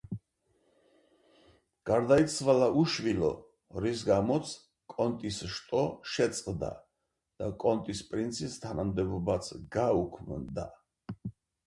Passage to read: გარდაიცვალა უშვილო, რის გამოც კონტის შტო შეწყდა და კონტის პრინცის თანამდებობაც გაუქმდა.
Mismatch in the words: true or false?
false